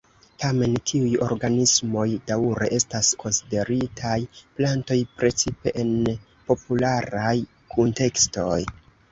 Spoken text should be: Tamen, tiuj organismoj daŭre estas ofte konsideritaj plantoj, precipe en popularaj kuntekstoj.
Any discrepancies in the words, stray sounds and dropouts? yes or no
yes